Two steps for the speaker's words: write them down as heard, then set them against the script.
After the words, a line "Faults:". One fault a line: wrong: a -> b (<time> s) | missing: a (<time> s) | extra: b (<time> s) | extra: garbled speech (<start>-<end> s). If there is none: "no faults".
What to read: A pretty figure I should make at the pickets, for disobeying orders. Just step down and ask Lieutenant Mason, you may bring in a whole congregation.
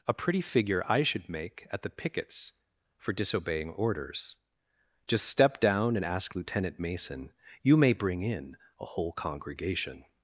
A pretty figure I should make at the pickets, for disobeying orders. Just step down and ask Lieutenant Mason, you may bring in a whole congregation.
Faults:
no faults